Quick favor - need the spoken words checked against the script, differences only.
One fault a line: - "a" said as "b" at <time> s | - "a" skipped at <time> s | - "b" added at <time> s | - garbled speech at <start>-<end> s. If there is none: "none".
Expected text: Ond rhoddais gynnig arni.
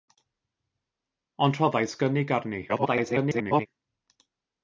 - garbled speech at 2.7-3.7 s